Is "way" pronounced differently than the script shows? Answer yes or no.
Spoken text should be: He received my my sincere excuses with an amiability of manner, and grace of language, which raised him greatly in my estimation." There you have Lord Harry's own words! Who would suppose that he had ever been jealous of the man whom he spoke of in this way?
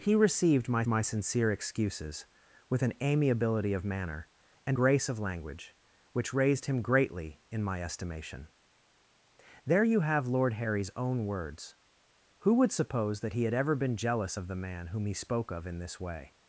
no